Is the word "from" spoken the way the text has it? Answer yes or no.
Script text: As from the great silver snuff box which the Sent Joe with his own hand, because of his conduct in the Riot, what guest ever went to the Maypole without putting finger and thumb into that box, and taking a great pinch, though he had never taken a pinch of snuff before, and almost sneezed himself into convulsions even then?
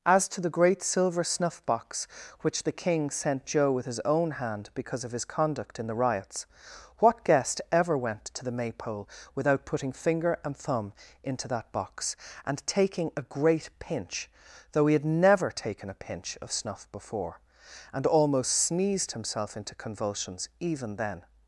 no